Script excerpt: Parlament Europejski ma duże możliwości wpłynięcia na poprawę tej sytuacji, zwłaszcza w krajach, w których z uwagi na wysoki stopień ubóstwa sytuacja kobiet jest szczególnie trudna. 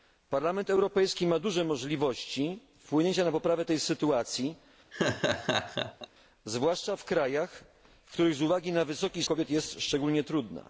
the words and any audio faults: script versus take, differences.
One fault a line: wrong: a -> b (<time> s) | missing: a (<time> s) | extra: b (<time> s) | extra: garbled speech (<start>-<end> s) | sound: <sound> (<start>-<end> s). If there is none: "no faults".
sound: laugh (4.9-6.1 s)
missing: stopień ubóstwa sytuacja (9.2 s)